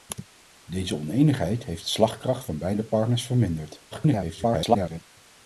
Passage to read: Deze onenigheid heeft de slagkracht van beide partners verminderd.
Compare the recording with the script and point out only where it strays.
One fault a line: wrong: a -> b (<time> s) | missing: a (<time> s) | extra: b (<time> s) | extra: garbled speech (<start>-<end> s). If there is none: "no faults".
extra: garbled speech (3.9-5.0 s)